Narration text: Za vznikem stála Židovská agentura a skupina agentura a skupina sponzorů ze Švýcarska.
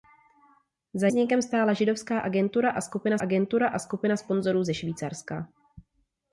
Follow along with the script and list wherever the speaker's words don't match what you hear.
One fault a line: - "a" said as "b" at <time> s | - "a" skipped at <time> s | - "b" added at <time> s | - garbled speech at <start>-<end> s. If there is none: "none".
none